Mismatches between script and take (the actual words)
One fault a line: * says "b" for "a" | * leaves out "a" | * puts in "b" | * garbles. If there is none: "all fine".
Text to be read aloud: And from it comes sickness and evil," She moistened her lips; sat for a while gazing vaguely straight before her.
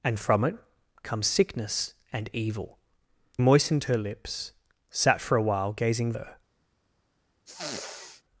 * leaves out "She"
* leaves out "vaguely straight before"